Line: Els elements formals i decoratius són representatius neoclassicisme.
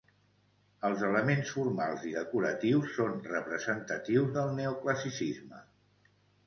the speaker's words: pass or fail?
fail